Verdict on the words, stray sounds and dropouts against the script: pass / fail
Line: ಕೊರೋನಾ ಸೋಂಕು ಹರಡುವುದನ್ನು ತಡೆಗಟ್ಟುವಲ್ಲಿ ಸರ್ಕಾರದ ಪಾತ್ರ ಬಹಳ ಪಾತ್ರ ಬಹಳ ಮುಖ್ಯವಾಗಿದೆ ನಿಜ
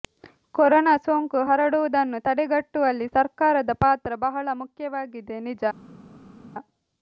fail